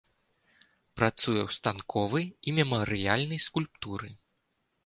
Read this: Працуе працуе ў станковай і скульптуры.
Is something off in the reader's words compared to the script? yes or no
yes